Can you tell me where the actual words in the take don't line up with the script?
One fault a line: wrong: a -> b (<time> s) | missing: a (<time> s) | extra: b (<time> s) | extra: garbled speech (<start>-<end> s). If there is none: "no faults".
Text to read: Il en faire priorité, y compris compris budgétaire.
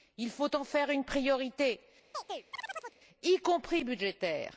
extra: faut (0.3 s)
extra: une (0.9 s)
missing: compris (3.8 s)